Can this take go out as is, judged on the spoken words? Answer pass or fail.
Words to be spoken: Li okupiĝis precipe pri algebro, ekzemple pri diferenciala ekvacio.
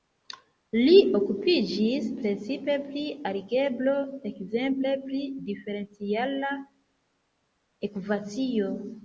pass